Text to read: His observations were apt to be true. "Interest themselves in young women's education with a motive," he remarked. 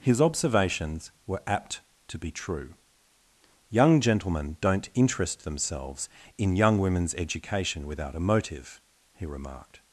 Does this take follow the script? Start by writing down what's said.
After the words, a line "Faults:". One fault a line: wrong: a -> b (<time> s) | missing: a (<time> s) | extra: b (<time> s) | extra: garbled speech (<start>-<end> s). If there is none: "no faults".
His observations were apt to be true. "Young gentlemen don't interest themselves in young women's education without a motive," he remarked.
Faults:
extra: Young gentlemen don't (3.7 s)
wrong: with -> without (7.8 s)